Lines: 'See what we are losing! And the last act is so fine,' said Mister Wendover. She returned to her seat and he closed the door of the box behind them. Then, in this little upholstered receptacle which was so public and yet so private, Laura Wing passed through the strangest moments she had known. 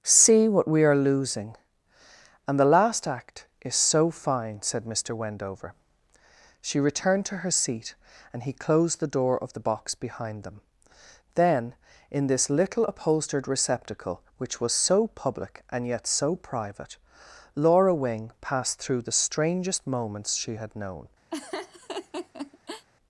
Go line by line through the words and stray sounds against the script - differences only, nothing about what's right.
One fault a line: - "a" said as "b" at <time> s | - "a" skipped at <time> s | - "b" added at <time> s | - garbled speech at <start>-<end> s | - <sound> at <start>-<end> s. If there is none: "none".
- laugh at 21.3-22.9 s